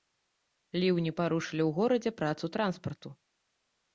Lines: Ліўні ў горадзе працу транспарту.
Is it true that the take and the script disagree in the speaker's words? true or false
true